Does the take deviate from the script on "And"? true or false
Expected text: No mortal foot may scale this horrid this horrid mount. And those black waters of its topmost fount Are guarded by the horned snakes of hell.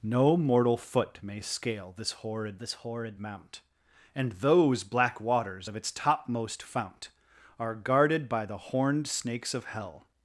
false